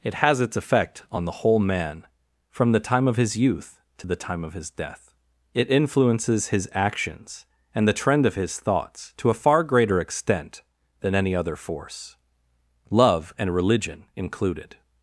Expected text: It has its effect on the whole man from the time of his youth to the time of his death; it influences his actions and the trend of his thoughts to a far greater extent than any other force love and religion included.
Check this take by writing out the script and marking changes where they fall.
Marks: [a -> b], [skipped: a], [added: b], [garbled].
It has its effect on the whole man from the time of his youth to the time of his death; it influences his actions and the trend of his thoughts to a far greater extent than any other force love and religion included.